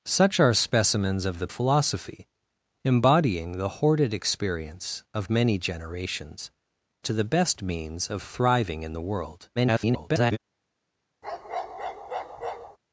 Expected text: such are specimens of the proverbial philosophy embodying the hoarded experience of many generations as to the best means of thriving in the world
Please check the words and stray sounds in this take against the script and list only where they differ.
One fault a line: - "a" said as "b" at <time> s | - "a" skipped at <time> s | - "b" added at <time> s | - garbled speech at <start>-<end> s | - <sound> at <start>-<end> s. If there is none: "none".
- "proverbial" skipped at 1.5 s
- "as" skipped at 6.5 s
- garbled speech at 9.6-10.4 s
- bark at 11.2-12.8 s